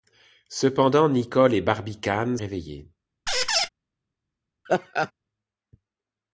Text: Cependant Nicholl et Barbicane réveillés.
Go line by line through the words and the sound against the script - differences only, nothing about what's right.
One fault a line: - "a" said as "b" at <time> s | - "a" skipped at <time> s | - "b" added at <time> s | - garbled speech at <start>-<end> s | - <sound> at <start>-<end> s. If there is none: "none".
- squeak at 3.3-3.7 s
- laugh at 4.7-5.1 s